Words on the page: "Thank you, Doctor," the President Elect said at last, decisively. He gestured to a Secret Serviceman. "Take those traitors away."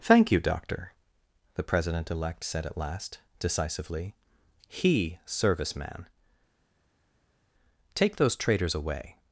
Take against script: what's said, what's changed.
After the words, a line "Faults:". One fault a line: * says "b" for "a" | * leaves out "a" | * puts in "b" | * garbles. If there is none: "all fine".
"Thank you, Doctor," the President Elect said at last, decisively. He Serviceman. "Take those traitors away."
Faults:
* leaves out "gestured to a Secret"